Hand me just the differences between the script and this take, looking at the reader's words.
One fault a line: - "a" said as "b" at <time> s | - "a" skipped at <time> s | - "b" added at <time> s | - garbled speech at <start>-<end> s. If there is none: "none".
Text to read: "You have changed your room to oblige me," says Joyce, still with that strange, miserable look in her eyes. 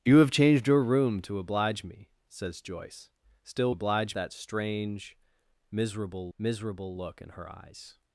- "with" said as "oblige" at 3.7 s
- "miserable" added at 6.4 s